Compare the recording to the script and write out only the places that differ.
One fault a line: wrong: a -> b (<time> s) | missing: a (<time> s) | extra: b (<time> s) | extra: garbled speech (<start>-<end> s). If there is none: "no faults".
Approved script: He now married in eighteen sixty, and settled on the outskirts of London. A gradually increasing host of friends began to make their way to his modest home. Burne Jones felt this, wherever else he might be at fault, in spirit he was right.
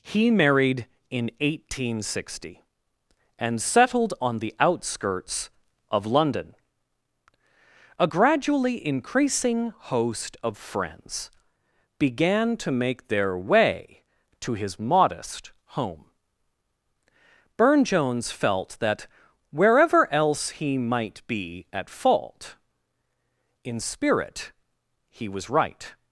missing: now (0.3 s)
wrong: this -> that (18.8 s)